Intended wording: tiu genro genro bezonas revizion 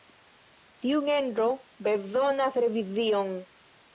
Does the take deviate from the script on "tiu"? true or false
false